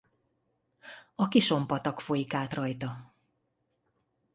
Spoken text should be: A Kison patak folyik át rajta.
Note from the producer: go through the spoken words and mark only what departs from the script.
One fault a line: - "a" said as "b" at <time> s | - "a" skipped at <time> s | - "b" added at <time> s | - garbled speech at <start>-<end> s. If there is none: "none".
none